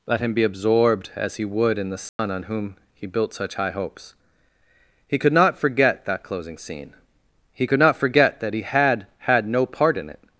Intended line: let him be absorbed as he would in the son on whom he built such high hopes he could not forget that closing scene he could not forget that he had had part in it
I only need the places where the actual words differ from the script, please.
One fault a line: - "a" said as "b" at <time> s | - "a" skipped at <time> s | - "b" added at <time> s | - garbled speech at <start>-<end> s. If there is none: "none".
- "no" added at 9.5 s